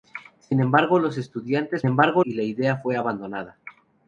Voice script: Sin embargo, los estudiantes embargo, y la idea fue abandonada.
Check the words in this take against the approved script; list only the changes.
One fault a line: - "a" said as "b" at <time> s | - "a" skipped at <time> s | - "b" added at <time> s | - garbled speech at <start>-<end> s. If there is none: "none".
none